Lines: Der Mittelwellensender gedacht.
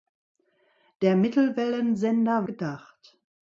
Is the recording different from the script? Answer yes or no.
no